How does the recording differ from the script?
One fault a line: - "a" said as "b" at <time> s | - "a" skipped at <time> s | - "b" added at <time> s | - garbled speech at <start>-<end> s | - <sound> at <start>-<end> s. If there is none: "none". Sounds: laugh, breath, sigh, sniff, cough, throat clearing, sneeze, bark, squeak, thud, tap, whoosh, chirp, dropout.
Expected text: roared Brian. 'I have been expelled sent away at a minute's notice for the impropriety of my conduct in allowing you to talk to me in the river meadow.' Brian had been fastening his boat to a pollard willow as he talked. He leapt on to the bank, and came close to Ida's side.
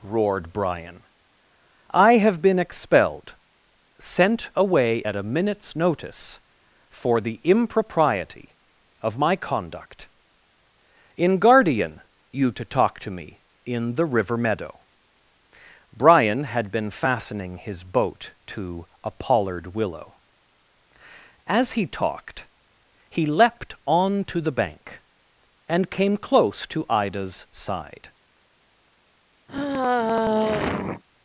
- "allowing" said as "guardian" at 11.4 s
- sigh at 29.5-31.0 s